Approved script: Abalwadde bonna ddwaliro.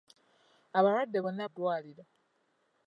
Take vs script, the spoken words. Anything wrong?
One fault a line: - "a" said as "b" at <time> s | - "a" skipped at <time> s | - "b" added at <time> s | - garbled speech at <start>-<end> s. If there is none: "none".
none